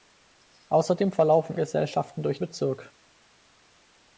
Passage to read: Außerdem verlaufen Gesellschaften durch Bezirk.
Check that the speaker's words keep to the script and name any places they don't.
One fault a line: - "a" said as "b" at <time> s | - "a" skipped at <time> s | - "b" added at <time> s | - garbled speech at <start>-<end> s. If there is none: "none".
none